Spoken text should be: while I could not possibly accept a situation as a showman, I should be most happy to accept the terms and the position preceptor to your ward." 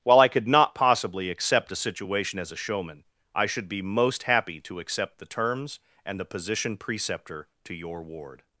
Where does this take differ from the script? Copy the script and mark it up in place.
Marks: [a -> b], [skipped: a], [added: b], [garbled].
while I could not possibly accept a situation as a showman, I should be most happy to accept the terms and the position preceptor to your ward."